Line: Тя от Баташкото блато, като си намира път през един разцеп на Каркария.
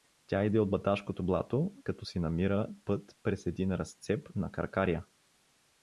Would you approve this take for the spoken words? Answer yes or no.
no